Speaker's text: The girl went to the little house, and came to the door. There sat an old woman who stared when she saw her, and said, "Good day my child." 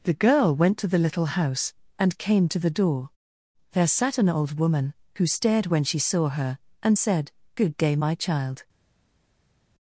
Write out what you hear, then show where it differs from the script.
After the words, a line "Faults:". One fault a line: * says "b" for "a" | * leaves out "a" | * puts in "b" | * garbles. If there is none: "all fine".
The girl went to the little house, and came to the door. There sat an old woman who stared when she saw her, and said, "Good day my child."
Faults:
all fine